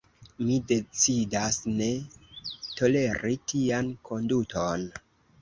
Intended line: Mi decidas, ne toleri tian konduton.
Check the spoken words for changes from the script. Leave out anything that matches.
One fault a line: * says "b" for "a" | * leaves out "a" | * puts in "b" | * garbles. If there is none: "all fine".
all fine